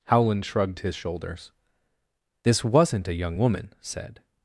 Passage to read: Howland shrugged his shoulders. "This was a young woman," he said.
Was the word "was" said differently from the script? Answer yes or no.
yes